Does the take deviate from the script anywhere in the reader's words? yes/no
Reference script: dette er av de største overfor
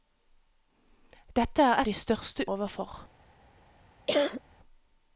no